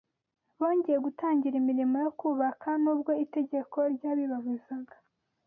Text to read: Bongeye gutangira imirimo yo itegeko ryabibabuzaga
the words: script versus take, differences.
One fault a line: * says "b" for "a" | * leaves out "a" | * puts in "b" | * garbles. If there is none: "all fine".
* puts in "kubaka n'ubwo"